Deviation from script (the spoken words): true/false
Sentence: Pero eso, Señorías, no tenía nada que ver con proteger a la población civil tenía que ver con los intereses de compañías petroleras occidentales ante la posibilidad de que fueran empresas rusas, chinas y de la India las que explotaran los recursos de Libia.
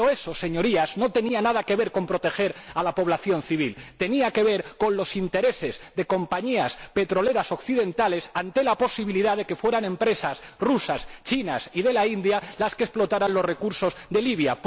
false